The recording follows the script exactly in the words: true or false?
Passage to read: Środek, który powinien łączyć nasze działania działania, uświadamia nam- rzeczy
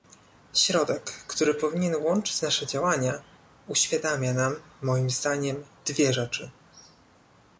false